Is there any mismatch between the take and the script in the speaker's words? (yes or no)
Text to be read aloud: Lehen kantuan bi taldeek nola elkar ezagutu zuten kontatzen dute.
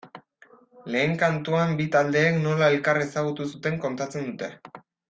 no